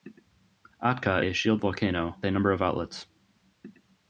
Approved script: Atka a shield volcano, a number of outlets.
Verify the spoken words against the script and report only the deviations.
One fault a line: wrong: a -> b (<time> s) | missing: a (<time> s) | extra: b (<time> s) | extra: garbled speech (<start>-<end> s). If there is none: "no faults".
no faults